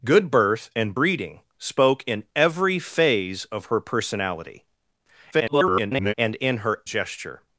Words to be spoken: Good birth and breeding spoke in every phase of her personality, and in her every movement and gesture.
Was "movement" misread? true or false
true